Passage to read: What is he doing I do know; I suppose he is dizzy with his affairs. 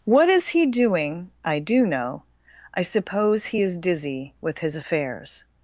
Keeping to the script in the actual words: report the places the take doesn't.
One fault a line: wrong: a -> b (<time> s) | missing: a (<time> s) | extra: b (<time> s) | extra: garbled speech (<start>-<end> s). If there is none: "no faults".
no faults